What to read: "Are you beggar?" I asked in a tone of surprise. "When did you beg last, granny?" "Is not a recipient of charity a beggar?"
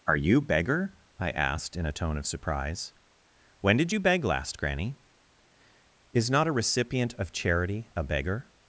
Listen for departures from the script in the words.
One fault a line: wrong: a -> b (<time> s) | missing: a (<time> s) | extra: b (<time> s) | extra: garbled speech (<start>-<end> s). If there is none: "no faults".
no faults